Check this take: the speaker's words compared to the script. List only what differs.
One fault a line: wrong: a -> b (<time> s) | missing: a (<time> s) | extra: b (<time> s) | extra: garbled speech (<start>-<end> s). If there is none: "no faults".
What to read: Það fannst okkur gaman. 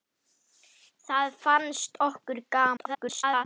extra: garbled speech (2.8-3.4 s)